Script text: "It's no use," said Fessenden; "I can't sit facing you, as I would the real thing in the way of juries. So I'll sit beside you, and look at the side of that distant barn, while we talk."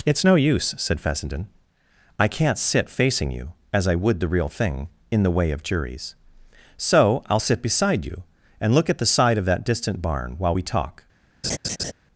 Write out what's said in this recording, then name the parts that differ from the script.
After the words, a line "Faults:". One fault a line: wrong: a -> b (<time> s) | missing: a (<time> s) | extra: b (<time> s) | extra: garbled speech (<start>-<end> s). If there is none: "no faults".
"It's no use," said Fessenden; "I can't sit facing you, as I would the real thing in the way of juries. So I'll sit beside you, and look at the side of that distant barn, while we talk."
Faults:
no faults